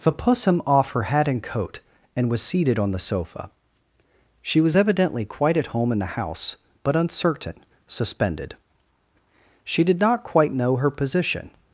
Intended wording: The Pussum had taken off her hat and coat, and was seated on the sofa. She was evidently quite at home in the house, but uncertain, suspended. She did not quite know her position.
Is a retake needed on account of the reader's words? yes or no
yes